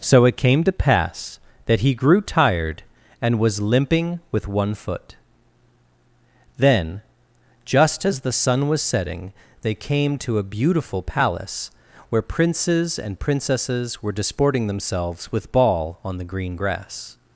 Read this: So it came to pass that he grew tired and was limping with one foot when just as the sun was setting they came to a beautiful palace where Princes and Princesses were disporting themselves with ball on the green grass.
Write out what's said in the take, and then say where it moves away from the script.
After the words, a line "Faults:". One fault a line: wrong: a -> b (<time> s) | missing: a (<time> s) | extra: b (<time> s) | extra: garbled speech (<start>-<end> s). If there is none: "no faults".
So it came to pass that he grew tired and was limping with one foot then just as the sun was setting they came to a beautiful palace where Princes and Princesses were disporting themselves with ball on the green grass.
Faults:
wrong: when -> then (6.6 s)